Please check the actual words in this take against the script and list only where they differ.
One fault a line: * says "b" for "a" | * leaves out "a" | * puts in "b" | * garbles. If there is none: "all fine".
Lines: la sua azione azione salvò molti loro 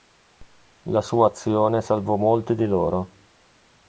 * leaves out "azione"
* puts in "di"